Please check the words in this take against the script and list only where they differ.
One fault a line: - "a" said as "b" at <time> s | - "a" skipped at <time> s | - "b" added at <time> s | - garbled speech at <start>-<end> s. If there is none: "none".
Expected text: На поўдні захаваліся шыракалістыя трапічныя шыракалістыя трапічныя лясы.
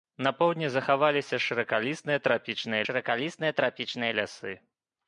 none